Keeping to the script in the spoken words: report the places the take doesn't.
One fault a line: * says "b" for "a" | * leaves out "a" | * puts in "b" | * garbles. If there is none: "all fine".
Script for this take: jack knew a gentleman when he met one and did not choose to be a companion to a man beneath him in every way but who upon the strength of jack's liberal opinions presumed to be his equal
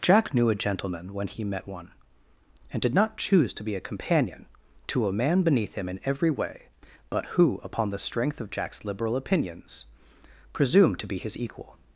all fine